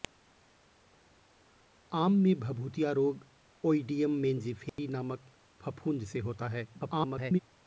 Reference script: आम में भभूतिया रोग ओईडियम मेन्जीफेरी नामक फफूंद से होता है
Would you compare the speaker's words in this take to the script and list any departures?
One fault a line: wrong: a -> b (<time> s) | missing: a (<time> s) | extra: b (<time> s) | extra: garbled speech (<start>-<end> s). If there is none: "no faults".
extra: garbled speech (6.7-7.4 s)